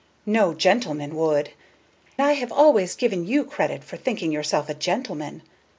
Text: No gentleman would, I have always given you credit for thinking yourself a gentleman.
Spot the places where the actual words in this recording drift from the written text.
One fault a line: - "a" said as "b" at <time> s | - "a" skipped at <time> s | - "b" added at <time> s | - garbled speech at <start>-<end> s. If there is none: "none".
none